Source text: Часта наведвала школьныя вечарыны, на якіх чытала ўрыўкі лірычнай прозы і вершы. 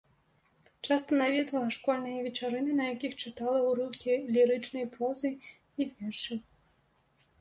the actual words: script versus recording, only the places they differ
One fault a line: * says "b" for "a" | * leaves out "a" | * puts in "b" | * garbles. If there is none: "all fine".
all fine